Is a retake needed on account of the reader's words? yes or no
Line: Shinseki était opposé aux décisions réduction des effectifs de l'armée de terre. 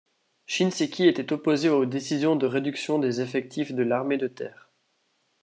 yes